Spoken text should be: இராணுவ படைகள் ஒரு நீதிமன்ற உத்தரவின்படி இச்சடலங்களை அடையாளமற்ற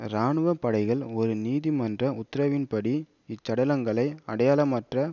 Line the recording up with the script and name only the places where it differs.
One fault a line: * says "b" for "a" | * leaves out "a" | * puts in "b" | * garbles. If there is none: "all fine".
all fine